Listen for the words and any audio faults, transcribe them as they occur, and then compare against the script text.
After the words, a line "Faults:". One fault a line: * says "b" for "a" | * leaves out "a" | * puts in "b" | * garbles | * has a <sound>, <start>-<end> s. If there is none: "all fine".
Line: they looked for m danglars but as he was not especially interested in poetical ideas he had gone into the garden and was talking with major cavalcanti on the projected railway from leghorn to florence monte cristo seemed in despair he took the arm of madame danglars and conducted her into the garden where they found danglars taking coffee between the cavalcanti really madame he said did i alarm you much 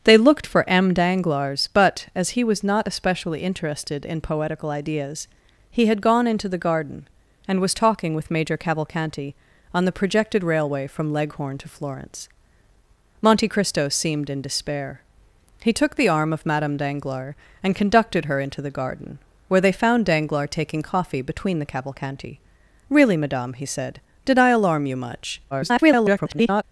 they looked for m danglars but as he was not especially interested in poetical ideas he had gone into the garden and was talking with major cavalcanti on the projected railway from leghorn to florence monte cristo seemed in despair he took the arm of madame danglars and conducted her into the garden where they found danglars taking coffee between the cavalcanti really madame he said did i alarm you much [garbled]
Faults:
* garbles